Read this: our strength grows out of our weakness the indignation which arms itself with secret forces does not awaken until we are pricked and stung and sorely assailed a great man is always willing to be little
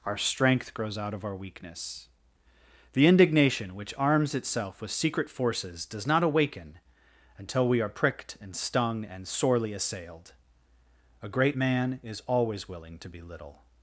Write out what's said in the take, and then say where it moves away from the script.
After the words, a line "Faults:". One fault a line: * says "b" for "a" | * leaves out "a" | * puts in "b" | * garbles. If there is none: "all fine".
our strength grows out of our weakness the indignation which arms itself with secret forces does not awaken until we are pricked and stung and sorely assailed a great man is always willing to be little
Faults:
all fine